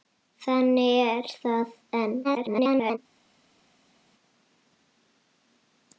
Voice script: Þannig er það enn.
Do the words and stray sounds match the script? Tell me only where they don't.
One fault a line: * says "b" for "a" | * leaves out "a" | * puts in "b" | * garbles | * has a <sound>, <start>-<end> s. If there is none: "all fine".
* garbles